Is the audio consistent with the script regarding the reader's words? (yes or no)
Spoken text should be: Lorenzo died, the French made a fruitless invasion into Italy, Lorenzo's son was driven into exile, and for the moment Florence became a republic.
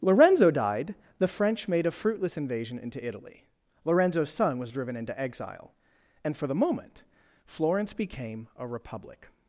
yes